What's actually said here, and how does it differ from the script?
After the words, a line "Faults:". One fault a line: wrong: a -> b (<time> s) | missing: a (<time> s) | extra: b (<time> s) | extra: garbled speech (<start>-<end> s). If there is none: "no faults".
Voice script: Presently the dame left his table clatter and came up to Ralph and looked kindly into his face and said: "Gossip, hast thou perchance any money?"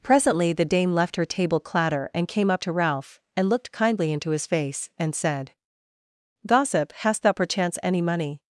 Presently the dame left her table clatter and came up to Ralph and looked kindly into his face and said: "Gossip, hast thou perchance any money?"
Faults:
wrong: his -> her (1.1 s)